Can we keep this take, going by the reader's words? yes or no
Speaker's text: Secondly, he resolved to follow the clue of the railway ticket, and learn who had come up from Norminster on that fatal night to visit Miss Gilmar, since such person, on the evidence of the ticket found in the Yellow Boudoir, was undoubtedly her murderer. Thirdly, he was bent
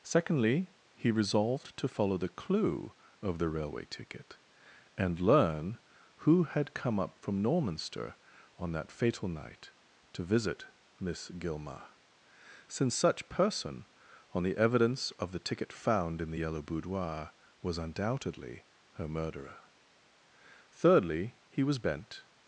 yes